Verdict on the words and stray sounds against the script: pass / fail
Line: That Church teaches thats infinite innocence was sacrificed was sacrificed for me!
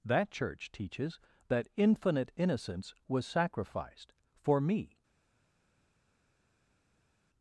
fail